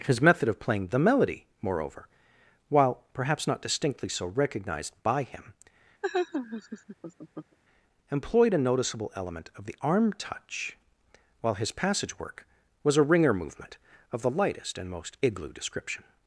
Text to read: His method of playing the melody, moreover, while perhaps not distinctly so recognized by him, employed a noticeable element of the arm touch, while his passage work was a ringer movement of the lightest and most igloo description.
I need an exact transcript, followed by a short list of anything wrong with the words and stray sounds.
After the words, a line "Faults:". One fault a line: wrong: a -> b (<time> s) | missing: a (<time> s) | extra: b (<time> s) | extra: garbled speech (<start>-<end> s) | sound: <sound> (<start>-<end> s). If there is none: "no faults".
His method of playing the melody, moreover, while perhaps not distinctly so recognized by him, employed a noticeable element of the arm touch, while his passage work was a ringer movement of the lightest and most igloo description.
Faults:
sound: laugh (6.0-7.6 s)